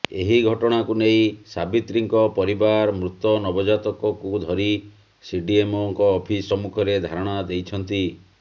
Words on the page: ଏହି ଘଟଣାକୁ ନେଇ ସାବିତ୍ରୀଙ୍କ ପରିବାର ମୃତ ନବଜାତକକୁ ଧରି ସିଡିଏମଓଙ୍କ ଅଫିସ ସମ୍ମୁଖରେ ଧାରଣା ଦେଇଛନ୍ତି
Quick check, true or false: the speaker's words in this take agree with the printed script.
true